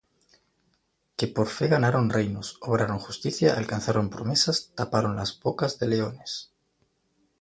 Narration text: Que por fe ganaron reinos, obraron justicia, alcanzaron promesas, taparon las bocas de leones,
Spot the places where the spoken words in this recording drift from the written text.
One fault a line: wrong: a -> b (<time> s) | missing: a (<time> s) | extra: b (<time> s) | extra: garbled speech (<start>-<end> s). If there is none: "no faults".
no faults